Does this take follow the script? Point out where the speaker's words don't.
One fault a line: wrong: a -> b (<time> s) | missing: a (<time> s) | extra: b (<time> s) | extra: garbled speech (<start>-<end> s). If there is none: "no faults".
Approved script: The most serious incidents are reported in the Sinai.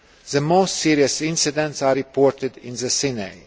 no faults